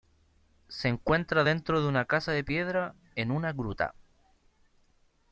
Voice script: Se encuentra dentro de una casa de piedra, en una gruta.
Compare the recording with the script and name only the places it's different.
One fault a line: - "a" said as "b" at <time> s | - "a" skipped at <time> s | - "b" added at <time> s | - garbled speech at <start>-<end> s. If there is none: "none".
none